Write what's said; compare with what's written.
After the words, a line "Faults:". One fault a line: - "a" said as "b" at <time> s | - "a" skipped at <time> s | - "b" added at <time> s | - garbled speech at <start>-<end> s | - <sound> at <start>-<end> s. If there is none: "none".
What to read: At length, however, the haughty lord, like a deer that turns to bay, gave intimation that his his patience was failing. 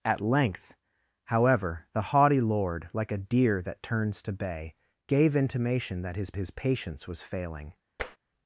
At length, however, the haughty lord, like a deer that turns to bay, gave intimation that his his patience was failing.
Faults:
- tap at 8.0-8.2 s